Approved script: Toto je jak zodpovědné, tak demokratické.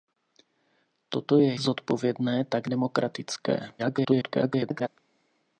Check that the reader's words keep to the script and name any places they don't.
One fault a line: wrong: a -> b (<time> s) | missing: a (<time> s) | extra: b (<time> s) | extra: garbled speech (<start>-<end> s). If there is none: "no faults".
missing: jak (1.6 s)
extra: garbled speech (3.8-4.9 s)